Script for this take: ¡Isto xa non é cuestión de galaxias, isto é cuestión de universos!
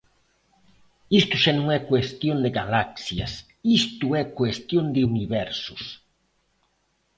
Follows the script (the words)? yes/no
yes